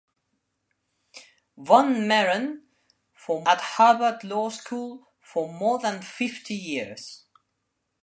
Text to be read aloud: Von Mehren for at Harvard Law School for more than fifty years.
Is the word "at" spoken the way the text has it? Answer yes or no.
yes